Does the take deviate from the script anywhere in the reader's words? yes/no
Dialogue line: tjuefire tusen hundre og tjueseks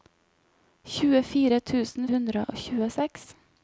no